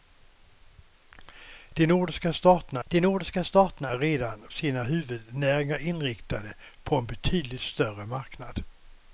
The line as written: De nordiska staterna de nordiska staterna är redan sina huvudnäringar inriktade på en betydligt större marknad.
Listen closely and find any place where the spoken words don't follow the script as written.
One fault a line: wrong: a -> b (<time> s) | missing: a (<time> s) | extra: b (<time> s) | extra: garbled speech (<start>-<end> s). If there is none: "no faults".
no faults